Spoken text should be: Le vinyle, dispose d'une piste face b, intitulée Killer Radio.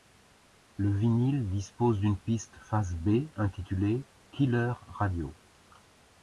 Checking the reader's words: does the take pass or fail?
pass